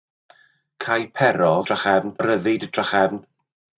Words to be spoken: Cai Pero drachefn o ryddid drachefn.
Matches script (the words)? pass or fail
pass